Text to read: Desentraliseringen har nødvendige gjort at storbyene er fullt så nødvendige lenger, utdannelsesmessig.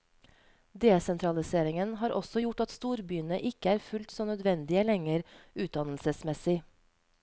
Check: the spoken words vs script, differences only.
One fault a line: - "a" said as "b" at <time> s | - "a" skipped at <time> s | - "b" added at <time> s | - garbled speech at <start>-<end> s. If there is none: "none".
- "nødvendige" said as "også" at 2.2 s
- "ikke" added at 3.5 s